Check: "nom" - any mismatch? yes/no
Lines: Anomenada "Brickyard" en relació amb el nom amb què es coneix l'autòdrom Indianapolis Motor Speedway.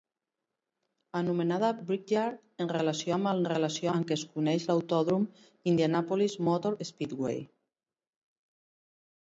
yes